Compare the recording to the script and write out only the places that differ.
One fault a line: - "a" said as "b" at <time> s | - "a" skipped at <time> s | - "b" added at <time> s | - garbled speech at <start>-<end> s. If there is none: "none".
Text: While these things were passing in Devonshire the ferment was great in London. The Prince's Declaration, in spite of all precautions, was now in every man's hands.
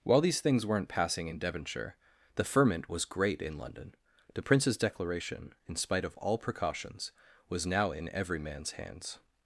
- "were" said as "weren't" at 0.7 s